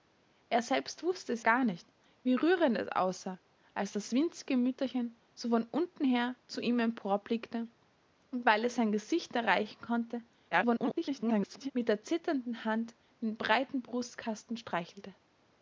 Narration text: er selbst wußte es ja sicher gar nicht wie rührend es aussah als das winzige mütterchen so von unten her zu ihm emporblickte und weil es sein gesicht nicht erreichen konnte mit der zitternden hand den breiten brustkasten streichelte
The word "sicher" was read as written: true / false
false